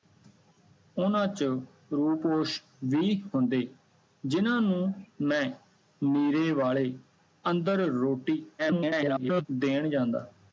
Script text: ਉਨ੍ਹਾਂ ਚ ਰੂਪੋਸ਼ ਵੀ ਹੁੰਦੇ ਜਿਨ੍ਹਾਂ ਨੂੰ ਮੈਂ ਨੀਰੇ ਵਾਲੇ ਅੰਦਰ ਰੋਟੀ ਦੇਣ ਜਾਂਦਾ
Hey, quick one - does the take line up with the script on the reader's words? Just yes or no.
no